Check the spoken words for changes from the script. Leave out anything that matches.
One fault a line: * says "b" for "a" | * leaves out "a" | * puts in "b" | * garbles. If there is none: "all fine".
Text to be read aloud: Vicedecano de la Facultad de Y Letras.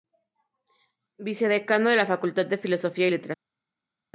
* puts in "Filosofía"